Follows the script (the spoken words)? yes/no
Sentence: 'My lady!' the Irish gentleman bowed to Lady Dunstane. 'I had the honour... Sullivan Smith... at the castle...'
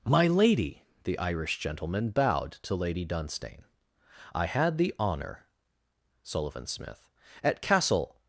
no